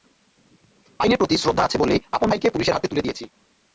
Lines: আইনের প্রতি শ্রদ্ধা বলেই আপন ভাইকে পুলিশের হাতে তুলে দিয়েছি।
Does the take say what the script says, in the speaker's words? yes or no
no